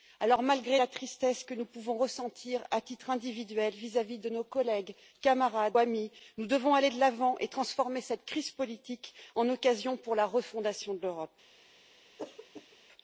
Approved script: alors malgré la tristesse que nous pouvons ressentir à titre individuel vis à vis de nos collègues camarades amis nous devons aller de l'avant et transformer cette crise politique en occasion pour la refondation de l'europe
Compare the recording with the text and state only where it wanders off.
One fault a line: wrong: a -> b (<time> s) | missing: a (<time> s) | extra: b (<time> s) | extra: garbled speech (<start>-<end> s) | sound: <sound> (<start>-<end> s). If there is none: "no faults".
sound: throat clearing (12.2-12.8 s)